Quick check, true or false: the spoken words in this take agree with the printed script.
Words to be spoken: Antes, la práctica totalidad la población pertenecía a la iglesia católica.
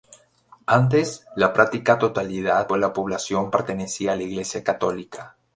true